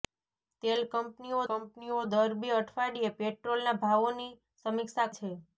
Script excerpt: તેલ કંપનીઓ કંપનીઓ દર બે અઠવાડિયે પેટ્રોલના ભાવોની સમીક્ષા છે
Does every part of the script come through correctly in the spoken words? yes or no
yes